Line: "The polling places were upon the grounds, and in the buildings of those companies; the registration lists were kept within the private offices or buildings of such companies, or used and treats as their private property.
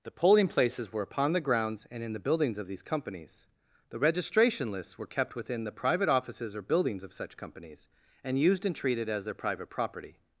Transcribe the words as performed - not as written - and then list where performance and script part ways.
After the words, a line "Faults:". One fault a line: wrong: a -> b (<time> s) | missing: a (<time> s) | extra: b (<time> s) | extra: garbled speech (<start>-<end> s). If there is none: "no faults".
"The polling places were upon the grounds, and in the buildings of these companies; the registration lists were kept within the private offices or buildings of such companies, and used and treated as their private property.
Faults:
wrong: those -> these (2.6 s)
wrong: or -> and (8.2 s)
wrong: treats -> treated (8.8 s)